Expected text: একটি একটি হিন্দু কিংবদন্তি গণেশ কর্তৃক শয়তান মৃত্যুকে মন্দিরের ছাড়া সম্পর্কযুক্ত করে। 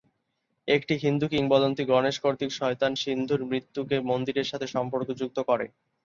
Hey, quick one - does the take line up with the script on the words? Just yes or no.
no